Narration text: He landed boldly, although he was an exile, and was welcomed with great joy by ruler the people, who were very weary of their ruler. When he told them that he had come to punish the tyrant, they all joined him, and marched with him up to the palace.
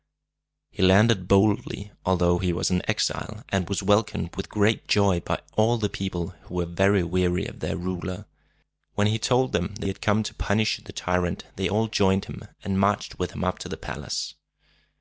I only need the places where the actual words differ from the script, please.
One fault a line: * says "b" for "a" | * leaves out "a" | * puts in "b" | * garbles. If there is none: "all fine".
* says "all" for "ruler"